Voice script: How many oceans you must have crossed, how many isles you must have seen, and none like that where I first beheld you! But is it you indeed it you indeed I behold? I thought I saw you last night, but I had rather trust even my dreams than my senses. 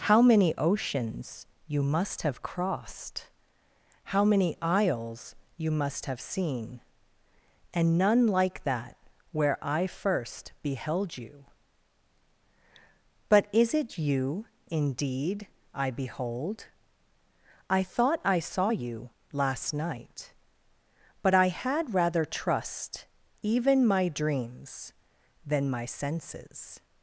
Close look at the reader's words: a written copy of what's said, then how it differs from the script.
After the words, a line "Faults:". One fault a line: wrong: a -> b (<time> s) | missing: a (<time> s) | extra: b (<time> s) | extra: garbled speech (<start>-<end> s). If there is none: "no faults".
How many oceans you must have crossed, how many isles you must have seen, and none like that where I first beheld you! But is it you indeed I behold? I thought I saw you last night, but I had rather trust even my dreams than my senses.
Faults:
missing: it you indeed (15.4 s)